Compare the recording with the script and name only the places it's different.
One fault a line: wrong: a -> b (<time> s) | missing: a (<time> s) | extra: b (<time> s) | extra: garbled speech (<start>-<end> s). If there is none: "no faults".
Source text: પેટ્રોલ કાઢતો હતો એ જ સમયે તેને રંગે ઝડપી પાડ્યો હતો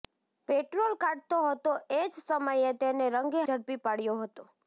no faults